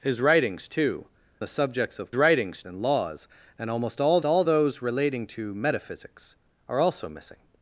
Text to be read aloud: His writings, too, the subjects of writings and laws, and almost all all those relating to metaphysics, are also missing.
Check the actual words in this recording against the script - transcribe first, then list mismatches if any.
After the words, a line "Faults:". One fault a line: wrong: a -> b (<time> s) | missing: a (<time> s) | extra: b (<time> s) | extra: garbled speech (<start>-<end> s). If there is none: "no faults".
His writings, too, the subjects of writings and laws, and almost all all those relating to metaphysics, are also missing.
Faults:
no faults